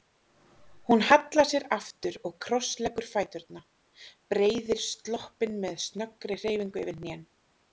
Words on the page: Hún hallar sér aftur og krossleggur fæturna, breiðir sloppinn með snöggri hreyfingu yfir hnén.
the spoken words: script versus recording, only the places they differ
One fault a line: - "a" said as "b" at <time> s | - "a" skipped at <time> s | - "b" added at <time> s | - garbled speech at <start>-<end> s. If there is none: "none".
none